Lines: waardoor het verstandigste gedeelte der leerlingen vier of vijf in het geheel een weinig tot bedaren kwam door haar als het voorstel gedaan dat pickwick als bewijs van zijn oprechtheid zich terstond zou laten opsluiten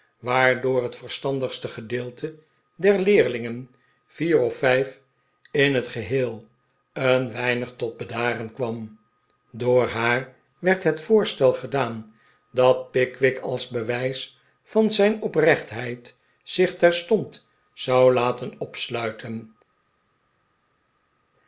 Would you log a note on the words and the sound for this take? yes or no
yes